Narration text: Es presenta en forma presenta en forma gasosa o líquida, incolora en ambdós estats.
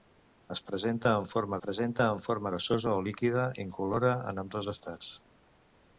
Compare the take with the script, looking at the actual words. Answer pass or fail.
pass